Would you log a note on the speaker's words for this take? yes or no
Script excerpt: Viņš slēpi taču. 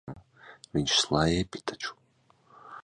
no